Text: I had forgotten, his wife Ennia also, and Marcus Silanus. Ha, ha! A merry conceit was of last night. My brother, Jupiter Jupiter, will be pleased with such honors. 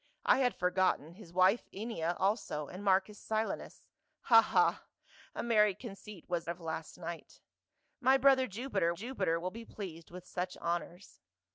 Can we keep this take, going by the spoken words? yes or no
yes